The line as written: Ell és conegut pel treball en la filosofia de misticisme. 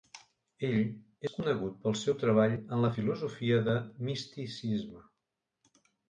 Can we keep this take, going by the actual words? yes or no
no